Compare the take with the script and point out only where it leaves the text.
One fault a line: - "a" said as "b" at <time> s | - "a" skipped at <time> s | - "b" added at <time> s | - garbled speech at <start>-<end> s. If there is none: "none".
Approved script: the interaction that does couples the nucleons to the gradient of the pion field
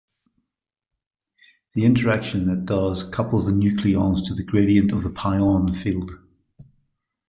none